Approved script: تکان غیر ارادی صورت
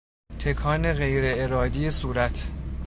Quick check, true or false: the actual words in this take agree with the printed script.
true